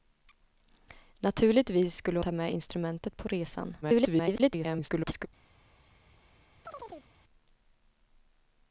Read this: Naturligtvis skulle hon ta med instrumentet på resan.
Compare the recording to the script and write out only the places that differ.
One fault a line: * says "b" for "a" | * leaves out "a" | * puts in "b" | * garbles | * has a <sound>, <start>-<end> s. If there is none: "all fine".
* leaves out "hon"
* garbles
* has a chirp, 6.6-7.1 s